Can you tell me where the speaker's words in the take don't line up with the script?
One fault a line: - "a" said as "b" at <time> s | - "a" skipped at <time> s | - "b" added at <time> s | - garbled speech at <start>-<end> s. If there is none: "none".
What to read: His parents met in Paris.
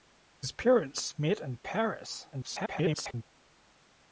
- garbled speech at 2.3-3.2 s